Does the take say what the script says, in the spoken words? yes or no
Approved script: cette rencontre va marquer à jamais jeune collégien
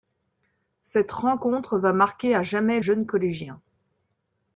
yes